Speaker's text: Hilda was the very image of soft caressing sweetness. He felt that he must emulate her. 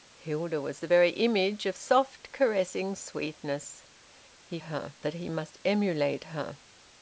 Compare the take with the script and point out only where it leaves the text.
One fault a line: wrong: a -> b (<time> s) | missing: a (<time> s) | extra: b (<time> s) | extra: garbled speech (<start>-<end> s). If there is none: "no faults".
wrong: felt -> her (4.6 s)